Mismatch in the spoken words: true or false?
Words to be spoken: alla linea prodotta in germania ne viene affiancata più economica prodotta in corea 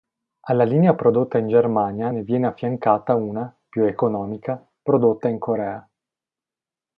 true